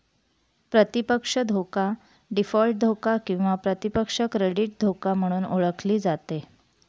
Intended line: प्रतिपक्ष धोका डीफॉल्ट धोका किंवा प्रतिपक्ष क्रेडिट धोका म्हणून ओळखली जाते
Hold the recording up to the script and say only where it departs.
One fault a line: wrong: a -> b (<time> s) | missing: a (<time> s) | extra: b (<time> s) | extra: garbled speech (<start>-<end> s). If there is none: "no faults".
no faults